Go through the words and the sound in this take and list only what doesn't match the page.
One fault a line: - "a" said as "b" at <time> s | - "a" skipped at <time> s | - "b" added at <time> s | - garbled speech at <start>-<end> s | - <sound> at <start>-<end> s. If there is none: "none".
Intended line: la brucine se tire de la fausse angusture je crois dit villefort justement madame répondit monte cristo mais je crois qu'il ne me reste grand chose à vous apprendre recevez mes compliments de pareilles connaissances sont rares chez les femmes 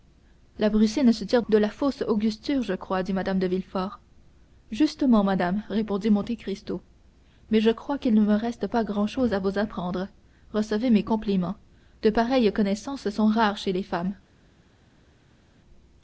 - "mme de" added at 3.1 s
- "pas" added at 8.7 s